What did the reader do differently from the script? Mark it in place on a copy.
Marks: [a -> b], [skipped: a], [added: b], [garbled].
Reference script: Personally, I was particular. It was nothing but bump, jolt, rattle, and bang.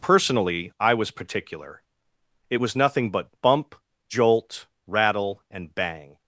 Personally, I was particular. It was nothing but bump, jolt, rattle, and bang.